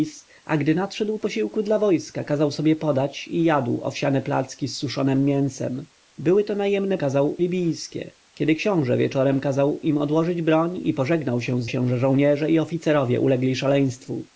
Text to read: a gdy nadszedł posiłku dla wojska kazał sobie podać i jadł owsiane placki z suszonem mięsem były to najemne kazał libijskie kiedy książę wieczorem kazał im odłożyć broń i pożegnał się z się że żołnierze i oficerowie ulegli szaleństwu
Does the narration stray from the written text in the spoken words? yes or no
no